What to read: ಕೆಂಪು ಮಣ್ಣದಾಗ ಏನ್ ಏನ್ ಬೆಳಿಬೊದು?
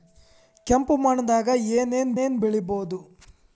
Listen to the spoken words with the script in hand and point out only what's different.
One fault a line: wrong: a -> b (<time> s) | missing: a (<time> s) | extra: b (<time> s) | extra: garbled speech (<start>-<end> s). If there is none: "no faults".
extra: ಏನ್ (2.2 s)